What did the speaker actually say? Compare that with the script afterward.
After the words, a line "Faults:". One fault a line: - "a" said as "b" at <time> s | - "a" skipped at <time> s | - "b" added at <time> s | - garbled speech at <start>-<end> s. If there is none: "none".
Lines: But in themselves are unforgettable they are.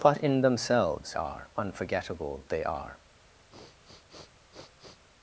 But in themselves are unforgettable they are.
Faults:
none